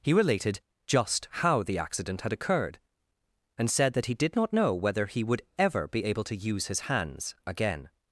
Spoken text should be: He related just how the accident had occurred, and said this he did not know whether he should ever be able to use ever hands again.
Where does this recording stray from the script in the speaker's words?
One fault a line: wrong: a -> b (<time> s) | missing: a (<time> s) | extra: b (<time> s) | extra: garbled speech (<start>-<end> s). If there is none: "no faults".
wrong: this -> that (3.9 s)
wrong: should -> would (5.2 s)
wrong: ever -> his (6.7 s)